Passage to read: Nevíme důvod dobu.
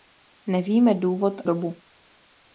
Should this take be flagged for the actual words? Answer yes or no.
no